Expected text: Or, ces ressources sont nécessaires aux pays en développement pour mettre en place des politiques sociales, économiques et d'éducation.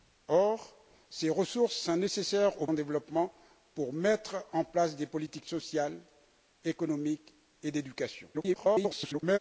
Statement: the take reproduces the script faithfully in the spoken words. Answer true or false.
false